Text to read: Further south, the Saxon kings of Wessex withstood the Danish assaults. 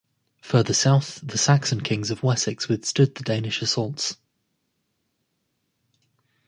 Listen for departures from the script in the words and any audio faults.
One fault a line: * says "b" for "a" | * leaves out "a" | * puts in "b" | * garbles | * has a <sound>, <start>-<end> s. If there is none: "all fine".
all fine